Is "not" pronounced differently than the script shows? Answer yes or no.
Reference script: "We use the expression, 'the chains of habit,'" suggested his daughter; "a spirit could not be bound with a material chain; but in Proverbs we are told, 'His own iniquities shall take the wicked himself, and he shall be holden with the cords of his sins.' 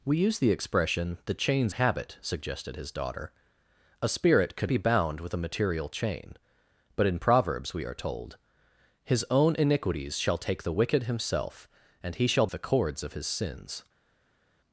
yes